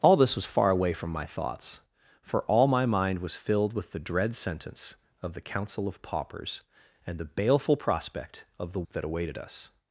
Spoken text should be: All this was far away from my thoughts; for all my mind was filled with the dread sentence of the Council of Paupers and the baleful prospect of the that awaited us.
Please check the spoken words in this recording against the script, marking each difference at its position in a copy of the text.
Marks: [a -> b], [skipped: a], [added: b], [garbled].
All this was far away from my thoughts; for all my mind was filled with the dread sentence of the Council of Paupers and the baleful prospect of the that awaited us.